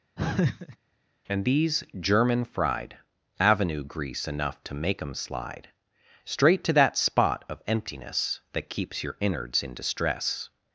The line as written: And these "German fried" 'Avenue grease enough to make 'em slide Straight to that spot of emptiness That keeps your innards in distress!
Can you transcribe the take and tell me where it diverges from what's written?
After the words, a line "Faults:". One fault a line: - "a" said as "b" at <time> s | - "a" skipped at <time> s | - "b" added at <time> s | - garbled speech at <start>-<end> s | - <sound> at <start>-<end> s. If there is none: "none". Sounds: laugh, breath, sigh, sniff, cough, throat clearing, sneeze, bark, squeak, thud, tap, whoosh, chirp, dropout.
And these "German fried" 'Avenue grease enough to make 'em slide Straight to that spot of emptiness That keeps your innards in distress!
Faults:
- laugh at 0.2-0.8 s